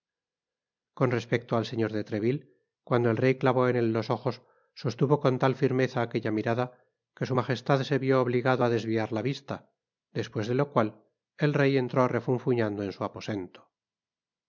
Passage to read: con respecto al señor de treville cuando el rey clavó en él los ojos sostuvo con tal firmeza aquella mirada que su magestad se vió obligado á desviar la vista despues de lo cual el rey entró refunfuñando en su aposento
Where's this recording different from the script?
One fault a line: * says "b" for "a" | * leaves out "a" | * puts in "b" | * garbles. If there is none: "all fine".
all fine